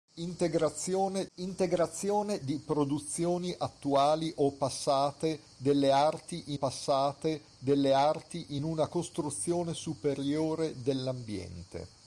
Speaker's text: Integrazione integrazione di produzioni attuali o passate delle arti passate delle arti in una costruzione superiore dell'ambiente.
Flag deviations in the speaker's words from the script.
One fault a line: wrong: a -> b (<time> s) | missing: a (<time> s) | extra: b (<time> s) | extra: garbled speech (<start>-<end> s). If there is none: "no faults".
no faults